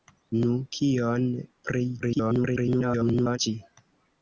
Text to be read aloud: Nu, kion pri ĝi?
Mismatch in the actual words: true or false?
true